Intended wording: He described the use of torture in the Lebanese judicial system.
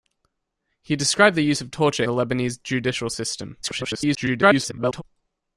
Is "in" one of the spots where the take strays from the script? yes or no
yes